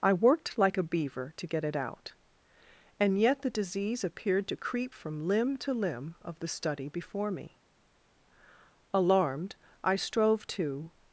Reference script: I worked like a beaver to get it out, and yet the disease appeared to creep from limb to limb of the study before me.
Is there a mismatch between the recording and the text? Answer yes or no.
yes